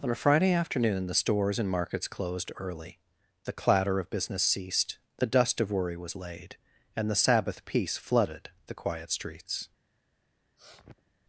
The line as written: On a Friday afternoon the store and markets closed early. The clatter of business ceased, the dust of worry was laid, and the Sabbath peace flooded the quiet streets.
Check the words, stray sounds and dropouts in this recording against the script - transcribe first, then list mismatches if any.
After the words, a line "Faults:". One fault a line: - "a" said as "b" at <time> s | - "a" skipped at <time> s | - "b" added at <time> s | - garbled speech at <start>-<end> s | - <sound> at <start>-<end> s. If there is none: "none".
On a Friday afternoon the stores and markets closed early. The clatter of business ceased, the dust of worry was laid, and the Sabbath peace flooded the quiet streets.
Faults:
- "store" said as "stores" at 1.2 s
- sniff at 10.6-11.1 s